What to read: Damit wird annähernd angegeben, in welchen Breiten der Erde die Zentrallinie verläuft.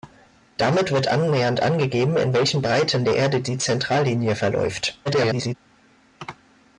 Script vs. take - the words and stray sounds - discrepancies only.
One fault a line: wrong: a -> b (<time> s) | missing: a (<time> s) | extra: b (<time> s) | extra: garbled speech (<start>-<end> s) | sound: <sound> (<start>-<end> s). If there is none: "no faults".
extra: garbled speech (5.0-5.5 s)